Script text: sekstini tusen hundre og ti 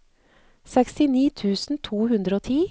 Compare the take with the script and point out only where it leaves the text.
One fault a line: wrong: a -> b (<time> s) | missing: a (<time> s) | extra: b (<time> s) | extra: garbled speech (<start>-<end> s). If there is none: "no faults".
extra: to (1.9 s)